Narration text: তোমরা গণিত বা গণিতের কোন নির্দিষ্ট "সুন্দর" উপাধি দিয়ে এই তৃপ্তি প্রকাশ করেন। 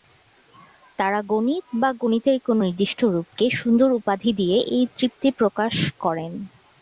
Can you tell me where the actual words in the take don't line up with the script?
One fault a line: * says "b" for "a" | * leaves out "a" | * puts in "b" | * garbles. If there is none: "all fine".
* says "তারা" for "তোমরা"
* puts in "রূপকে"